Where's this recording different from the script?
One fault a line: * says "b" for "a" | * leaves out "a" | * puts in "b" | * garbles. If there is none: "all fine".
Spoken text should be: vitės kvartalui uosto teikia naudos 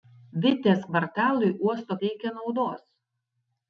all fine